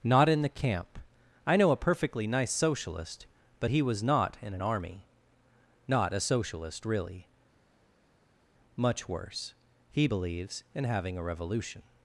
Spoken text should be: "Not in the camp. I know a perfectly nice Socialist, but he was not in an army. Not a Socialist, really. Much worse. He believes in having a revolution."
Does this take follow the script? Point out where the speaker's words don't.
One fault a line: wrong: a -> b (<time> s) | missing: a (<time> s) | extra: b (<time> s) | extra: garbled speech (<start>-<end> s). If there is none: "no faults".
no faults